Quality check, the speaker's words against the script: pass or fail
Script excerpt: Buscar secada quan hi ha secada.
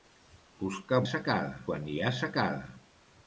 pass